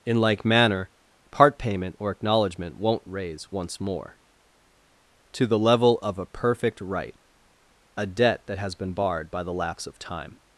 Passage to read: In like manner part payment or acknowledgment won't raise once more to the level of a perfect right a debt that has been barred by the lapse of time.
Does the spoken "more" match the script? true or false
true